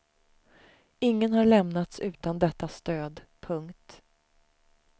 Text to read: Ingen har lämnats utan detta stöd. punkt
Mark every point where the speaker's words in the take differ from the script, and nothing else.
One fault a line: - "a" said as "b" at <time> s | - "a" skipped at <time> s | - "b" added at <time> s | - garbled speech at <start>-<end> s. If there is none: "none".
none